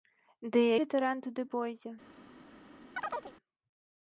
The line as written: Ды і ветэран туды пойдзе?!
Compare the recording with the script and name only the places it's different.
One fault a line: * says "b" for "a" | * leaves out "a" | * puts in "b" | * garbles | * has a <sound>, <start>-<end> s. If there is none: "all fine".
* has a chirp, 3.0-3.3 s